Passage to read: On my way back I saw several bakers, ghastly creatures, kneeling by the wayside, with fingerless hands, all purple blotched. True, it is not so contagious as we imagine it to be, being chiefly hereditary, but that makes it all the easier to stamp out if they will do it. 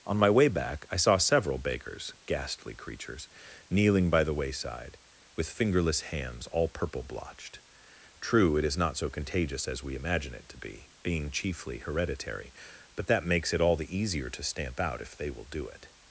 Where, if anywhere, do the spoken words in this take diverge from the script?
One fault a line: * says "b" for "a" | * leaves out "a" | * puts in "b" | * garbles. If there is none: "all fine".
all fine